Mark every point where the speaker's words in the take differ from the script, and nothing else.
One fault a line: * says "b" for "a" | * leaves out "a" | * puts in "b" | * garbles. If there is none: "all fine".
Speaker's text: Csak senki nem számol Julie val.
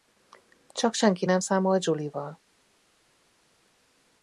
all fine